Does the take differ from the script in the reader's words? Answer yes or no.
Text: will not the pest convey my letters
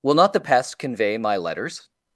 no